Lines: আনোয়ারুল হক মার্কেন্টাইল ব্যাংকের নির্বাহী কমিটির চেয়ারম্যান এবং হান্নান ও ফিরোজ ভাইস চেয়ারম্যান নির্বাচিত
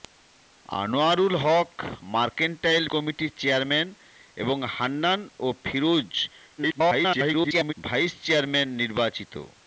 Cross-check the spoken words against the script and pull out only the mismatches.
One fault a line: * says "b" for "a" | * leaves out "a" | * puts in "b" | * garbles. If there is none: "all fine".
* leaves out "ব্যাংকের নির্বাহী"
* garbles